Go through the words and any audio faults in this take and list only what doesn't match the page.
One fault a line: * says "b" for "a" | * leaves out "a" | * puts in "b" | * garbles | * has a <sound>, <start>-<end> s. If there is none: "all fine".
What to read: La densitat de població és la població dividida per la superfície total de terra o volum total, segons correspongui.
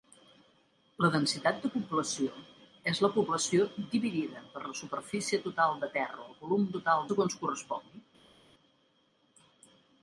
all fine